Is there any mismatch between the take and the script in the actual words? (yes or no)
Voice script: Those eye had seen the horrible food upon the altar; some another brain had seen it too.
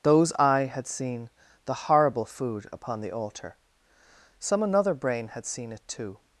no